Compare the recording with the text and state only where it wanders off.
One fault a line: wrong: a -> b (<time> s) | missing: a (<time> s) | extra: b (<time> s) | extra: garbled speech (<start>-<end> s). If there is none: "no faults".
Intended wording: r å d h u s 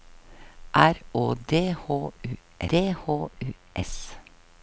extra: d h u (2.7 s)